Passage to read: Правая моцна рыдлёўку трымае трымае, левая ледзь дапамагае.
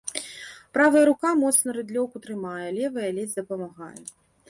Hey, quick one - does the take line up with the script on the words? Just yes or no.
no